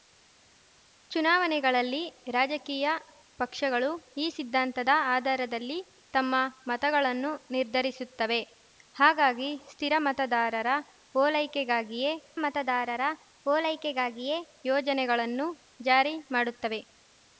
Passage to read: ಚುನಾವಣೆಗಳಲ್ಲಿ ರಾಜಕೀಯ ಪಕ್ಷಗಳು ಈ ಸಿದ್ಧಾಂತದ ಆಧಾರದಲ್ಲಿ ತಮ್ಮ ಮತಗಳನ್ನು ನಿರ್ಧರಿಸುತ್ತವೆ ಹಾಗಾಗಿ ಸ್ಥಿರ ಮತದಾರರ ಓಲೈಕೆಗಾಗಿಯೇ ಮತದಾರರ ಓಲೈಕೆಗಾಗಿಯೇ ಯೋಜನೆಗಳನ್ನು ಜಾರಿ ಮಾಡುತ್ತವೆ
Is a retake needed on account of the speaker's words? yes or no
no